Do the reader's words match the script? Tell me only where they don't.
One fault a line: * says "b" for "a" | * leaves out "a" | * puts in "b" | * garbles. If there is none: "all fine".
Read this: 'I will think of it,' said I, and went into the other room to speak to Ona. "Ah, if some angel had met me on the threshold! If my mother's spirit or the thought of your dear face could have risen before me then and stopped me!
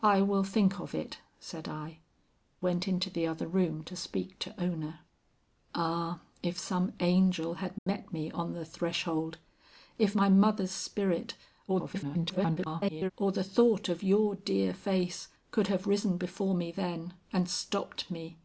* leaves out "and"
* garbles